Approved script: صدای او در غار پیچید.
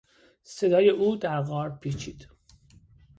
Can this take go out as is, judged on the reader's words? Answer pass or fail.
pass